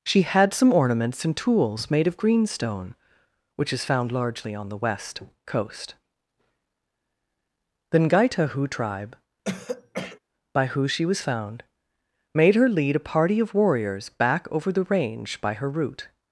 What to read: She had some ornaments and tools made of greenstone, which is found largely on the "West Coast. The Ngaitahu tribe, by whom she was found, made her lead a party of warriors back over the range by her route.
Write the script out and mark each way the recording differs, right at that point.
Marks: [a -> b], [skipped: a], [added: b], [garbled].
She had some ornaments and tools made of greenstone, which is found largely on the "West Coast. The Ngaitahu tribe, by [whom -> who] she was found, made her lead a party of warriors back over the range by her route.